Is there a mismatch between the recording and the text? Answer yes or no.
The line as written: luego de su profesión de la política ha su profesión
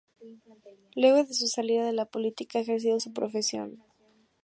yes